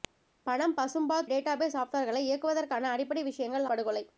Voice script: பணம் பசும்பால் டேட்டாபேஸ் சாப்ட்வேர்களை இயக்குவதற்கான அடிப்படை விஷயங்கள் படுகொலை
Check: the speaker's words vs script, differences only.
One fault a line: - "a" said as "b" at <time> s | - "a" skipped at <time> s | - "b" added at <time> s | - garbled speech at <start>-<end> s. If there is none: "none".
none